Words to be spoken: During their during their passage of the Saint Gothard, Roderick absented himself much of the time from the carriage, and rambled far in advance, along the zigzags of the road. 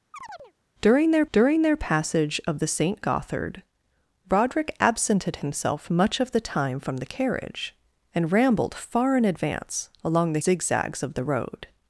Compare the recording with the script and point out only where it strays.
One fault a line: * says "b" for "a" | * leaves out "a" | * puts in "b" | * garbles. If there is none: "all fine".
all fine